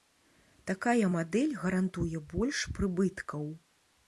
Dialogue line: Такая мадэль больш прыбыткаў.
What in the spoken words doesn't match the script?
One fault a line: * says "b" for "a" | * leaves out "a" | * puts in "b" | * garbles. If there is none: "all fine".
* puts in "гарантуе"